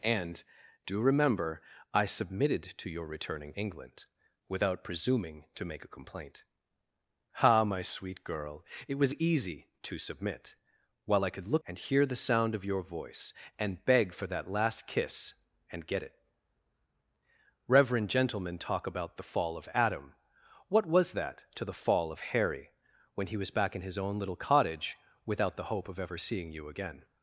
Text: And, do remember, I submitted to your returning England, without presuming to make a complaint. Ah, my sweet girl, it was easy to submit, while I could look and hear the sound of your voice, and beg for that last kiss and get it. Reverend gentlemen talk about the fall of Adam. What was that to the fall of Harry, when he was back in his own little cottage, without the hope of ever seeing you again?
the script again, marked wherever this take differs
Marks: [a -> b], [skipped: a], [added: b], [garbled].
And, do remember, I submitted to your returning England, without presuming to make a complaint. Ah, my sweet girl, it was easy to submit, while I could look and hear the sound of your voice, and beg for that last kiss and get it. Reverend gentlemen talk about the fall of Adam. What was that to the fall of Harry, when he was back in his own little cottage, without the hope of ever seeing you again?